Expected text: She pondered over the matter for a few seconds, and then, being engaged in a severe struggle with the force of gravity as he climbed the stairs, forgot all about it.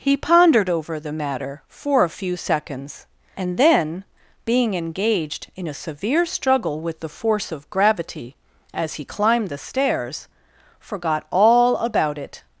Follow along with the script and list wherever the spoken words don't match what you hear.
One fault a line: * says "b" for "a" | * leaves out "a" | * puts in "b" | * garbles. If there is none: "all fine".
* says "He" for "She"